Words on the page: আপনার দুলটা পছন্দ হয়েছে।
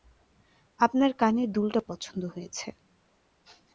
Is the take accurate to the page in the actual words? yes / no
no